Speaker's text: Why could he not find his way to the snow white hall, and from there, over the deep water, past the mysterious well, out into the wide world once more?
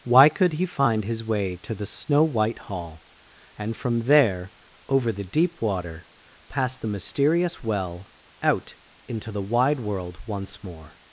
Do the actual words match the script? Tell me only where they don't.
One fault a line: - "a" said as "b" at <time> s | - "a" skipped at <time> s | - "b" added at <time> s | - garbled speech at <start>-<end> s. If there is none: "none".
- "not" skipped at 0.7 s